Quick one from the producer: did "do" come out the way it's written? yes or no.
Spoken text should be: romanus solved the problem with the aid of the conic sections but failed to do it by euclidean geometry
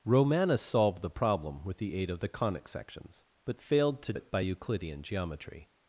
no